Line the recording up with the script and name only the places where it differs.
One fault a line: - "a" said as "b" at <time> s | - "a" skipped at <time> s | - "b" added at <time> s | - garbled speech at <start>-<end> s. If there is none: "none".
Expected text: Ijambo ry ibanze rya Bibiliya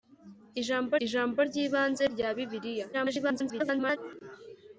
- "ijambo" added at 1.0 s
- garbled speech at 2.9-4.0 s